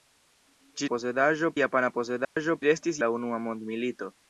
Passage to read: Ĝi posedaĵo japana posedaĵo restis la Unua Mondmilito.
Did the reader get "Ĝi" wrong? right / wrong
right